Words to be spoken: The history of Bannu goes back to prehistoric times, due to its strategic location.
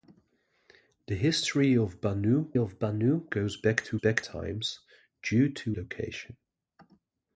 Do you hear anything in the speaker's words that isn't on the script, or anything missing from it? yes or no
yes